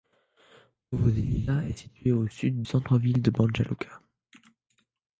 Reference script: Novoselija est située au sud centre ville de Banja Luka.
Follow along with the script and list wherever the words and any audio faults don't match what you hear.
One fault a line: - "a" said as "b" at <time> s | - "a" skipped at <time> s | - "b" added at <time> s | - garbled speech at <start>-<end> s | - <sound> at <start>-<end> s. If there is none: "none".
none